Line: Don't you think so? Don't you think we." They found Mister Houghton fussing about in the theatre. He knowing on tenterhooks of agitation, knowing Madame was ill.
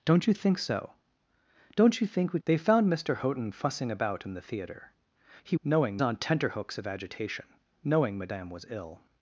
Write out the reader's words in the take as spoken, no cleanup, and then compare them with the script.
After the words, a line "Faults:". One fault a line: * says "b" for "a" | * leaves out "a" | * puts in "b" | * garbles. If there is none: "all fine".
Don't you think so? Don't you think we." They found Mister Houghton fussing about in the theatre. He knowing on tenterhooks of agitation, knowing Madame was ill.
Faults:
all fine